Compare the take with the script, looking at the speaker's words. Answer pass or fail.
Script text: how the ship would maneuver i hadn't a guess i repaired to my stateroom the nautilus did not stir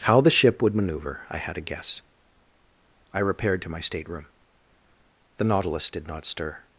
fail